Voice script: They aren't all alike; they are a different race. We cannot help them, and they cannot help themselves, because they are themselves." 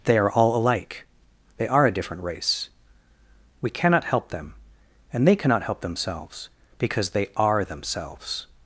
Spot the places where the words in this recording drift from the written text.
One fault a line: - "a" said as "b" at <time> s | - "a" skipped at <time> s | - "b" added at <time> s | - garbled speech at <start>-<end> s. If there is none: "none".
- "aren't" said as "are" at 0.2 s